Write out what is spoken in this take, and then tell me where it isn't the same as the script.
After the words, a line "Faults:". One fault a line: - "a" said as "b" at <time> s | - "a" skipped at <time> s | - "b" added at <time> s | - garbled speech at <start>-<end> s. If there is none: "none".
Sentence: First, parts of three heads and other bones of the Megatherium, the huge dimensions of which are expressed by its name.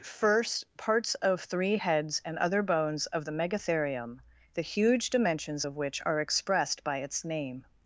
First, parts of three heads and other bones of the Megatherium, the huge dimensions of which are expressed by its name.
Faults:
none